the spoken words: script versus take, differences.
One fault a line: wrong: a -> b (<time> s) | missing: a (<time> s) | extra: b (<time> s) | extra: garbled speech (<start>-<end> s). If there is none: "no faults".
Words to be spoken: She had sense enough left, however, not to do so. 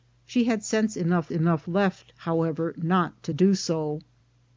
extra: enough (1.3 s)